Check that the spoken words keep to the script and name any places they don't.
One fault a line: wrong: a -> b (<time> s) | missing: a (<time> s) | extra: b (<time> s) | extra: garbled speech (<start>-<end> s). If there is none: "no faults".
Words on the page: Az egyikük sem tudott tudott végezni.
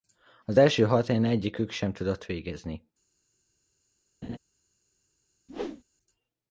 extra: első hat helyen (0.6 s)
missing: tudott (2.3 s)